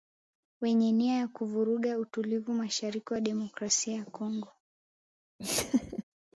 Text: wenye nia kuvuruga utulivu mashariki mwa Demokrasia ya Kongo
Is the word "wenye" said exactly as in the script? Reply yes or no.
yes